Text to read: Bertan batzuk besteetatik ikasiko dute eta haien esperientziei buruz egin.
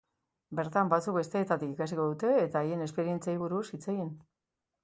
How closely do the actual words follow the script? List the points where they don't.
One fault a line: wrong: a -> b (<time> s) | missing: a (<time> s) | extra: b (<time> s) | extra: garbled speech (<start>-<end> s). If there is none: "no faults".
extra: hitz (3.7 s)